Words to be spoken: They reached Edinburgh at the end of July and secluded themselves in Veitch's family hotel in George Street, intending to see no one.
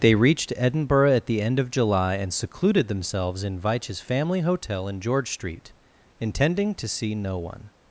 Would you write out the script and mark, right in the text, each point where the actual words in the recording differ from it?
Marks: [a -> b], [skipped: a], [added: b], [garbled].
They reached Edinburgh at the end of July and secluded themselves in Veitch's family hotel in George Street, intending to see no one.